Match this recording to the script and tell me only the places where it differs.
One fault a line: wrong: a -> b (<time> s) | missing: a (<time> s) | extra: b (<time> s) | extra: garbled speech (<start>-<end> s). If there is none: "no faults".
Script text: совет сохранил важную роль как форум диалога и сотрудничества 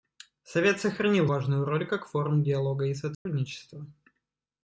no faults